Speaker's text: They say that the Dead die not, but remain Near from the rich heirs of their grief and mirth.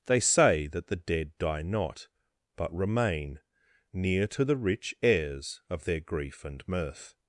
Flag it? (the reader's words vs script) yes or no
yes